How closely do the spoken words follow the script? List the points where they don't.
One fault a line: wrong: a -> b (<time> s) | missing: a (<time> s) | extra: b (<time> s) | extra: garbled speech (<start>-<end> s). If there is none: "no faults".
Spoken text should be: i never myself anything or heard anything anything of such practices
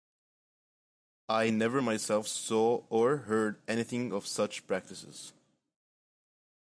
wrong: anything -> saw (2.2 s)
missing: anything (4.1 s)